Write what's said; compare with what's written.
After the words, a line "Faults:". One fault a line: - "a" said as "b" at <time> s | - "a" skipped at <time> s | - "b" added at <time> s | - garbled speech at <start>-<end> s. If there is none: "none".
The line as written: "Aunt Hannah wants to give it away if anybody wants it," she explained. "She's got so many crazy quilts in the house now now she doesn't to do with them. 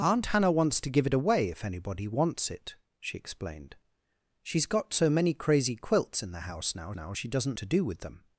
"Aunt Hannah wants to give it away if anybody wants it," she explained. "She's got so many crazy quilts in the house now now she doesn't to do with them.
Faults:
none